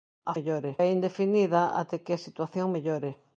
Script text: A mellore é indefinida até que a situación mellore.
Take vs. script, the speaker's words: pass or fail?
pass